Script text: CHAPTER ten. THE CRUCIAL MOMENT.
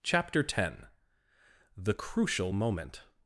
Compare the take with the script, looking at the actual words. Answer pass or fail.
pass